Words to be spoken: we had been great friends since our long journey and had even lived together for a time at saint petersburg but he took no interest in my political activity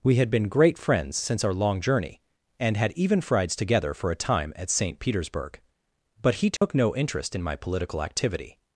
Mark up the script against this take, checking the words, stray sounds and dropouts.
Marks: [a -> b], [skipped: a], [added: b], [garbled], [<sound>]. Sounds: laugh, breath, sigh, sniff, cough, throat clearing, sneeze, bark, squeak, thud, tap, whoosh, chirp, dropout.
we had been great friends since our long journey and had even [lived -> frieds] together for a time at saint petersburg but he took [dropout] no interest in my political activity